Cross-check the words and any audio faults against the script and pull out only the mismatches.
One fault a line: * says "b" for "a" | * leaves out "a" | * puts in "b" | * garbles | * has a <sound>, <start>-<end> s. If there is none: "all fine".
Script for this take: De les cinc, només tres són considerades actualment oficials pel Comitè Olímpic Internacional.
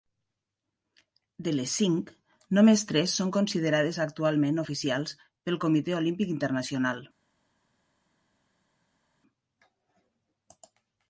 all fine